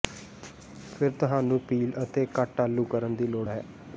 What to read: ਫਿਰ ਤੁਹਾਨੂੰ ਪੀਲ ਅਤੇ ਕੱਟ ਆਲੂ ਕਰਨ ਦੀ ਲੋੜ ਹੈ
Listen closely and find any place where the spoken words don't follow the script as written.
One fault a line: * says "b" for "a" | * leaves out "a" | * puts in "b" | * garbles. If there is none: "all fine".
all fine